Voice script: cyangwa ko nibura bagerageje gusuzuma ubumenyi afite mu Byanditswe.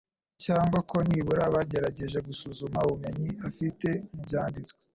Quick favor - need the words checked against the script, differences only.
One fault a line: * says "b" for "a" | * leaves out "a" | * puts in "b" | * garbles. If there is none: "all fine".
all fine